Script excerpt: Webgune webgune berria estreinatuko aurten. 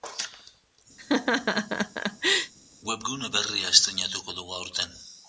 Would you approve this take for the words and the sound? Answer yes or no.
no